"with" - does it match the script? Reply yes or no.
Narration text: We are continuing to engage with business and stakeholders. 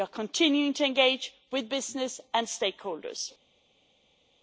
yes